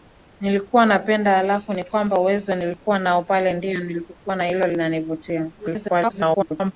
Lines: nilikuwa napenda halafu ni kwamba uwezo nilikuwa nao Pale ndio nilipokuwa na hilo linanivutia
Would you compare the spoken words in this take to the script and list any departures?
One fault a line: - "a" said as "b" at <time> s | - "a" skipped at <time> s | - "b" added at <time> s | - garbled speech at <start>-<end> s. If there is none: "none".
- garbled speech at 5.6-6.7 s